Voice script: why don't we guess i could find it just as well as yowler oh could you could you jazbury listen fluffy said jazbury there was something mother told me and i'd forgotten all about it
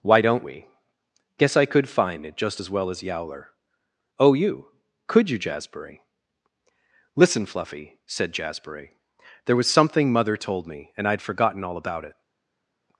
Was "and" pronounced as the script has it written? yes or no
yes